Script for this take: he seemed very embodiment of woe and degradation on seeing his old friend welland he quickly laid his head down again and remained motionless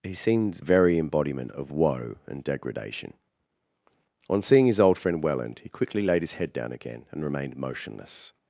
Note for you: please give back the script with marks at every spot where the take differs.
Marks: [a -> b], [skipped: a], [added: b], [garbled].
he seemed very embodiment of woe and degradation on seeing his old friend welland he quickly laid his head down again and remained motionless